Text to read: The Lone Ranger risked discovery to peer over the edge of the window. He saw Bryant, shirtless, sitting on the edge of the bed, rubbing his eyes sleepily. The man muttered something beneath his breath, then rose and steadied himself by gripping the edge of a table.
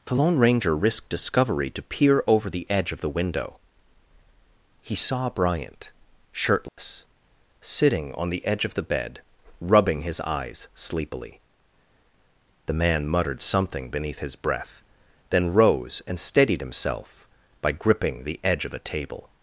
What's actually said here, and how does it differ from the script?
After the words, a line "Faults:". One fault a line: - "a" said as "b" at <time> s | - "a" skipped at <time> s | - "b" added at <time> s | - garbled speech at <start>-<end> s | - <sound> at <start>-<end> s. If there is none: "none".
The Lone Ranger risked discovery to peer over the edge of the window. He saw Bryant, shirtless, sitting on the edge of the bed, rubbing his eyes sleepily. The man muttered something beneath his breath, then rose and steadied himself by gripping the edge of a table.
Faults:
- dropout at 6.7-6.8 s